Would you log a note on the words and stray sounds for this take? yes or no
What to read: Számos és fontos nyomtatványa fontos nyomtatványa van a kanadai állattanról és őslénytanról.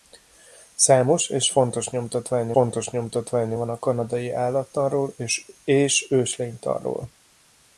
no